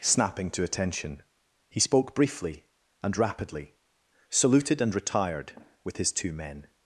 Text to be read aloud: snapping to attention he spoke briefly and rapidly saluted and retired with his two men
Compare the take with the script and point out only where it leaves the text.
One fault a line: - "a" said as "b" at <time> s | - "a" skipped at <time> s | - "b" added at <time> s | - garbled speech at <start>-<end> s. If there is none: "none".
none